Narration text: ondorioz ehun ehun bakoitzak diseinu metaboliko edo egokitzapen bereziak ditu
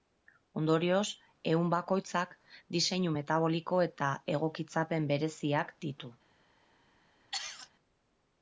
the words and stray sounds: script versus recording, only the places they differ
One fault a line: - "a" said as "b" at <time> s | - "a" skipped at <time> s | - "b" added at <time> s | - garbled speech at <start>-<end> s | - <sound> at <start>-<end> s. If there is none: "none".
- "ehun" skipped at 1.7 s
- "edo" said as "eta" at 3.9 s
- cough at 7.3-7.7 s